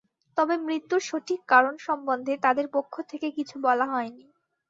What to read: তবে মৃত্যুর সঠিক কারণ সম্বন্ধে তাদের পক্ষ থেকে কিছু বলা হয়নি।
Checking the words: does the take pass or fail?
pass